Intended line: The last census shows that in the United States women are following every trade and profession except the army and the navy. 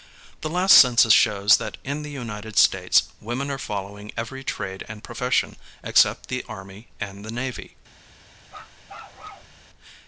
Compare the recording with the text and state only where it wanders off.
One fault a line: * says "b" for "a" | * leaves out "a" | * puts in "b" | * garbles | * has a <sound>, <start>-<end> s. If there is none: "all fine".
* has a bark, 8.5-9.6 s